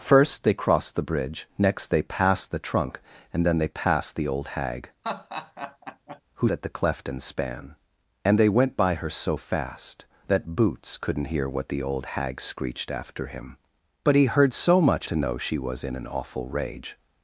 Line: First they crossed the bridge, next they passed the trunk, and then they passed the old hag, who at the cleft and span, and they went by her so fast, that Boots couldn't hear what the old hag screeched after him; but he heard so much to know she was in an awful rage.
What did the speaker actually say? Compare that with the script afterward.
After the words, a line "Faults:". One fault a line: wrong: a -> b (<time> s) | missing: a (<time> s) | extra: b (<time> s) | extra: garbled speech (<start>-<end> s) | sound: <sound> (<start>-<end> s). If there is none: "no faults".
First they crossed the bridge, next they passed the trunk, and then they passed the old hag, who at the cleft and span, and they went by her so fast, that Boots couldn't hear what the old hag screeched after him; but he heard so much to know she was in an awful rage.
Faults:
sound: laugh (5.0-6.2 s)